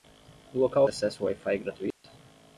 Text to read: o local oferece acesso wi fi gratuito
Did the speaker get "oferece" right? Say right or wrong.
wrong